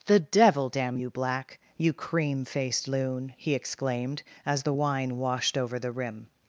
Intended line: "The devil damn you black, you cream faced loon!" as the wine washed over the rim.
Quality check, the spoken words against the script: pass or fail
fail